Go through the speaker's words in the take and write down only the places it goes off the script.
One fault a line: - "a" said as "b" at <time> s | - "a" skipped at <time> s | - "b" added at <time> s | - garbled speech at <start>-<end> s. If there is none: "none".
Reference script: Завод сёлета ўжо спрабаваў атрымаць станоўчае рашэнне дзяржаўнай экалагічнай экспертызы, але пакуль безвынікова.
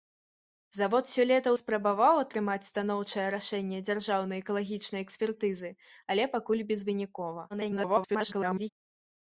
- "ўжо" skipped at 1.5 s
- garbled speech at 7.5-8.7 s